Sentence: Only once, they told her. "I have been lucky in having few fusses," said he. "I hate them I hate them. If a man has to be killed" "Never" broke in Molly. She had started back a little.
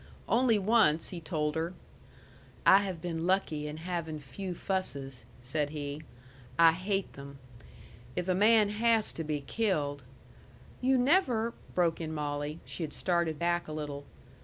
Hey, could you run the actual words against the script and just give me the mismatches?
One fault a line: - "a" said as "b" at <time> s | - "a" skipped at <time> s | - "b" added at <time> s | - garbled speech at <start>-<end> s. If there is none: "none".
- "they" said as "he" at 1.1 s
- "I hate them" skipped at 7.4 s
- "You" added at 10.8 s